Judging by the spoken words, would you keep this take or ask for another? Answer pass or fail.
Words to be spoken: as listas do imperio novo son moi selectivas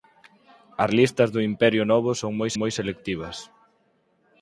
fail